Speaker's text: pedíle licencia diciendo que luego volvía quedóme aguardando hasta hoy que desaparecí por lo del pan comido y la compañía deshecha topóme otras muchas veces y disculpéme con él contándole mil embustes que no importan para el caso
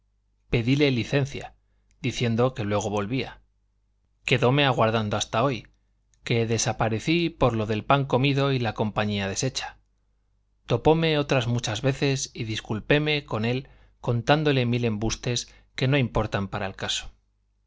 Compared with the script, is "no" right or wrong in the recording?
right